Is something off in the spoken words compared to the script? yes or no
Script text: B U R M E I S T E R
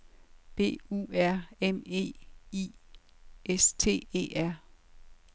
no